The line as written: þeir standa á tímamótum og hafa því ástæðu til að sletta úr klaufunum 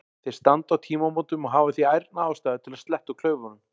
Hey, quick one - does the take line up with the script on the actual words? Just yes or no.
no